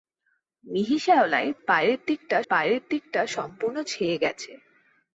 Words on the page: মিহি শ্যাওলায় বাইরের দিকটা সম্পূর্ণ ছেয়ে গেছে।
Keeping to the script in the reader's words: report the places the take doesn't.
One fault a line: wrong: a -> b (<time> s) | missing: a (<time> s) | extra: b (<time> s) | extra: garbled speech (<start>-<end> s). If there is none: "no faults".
extra: বাইরের দিকটা (2.5 s)